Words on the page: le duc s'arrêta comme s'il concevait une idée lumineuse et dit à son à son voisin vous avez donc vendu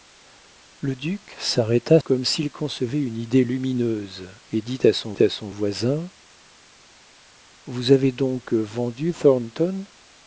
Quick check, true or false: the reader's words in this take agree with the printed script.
true